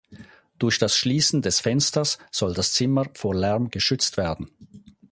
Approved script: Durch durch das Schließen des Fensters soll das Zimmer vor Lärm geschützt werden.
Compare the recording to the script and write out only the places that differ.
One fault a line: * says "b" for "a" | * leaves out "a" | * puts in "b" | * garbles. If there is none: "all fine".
* leaves out "durch"